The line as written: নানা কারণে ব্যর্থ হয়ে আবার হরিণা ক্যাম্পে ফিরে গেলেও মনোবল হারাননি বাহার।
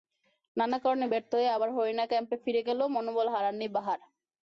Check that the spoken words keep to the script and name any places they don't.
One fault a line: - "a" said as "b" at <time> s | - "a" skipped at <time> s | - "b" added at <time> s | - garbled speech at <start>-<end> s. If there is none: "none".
none